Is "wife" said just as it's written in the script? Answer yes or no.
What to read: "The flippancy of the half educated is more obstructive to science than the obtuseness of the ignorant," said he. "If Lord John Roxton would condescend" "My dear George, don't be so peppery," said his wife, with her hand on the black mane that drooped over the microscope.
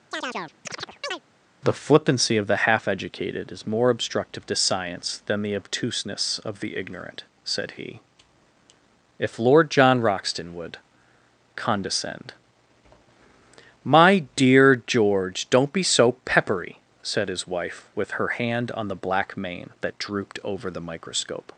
yes